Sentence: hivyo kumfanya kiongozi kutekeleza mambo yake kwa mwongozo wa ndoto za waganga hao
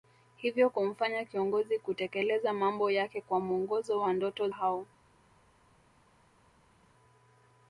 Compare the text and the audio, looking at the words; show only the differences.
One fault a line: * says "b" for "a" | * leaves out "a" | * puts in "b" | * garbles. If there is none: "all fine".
* leaves out "za waganga"